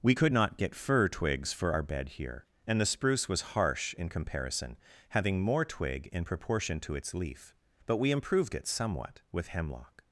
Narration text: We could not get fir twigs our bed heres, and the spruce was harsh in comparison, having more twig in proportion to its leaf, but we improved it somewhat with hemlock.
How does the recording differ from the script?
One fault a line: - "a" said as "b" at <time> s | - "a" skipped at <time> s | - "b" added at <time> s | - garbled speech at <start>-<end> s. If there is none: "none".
- "for" added at 1.5 s
- "heres" said as "here" at 2.1 s